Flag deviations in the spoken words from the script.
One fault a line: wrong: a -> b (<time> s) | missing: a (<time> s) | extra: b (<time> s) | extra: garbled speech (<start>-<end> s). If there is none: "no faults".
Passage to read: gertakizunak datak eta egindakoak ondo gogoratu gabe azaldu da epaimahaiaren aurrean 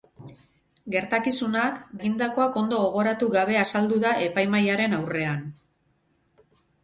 missing: datak eta (1.8 s)